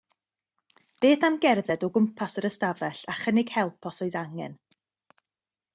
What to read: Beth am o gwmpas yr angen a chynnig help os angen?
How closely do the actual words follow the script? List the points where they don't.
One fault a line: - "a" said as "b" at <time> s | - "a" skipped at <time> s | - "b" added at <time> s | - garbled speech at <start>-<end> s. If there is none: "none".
- "gerdded" added at 1.4 s
- "angen" said as "ystafell" at 2.5 s
- "oes" added at 4.1 s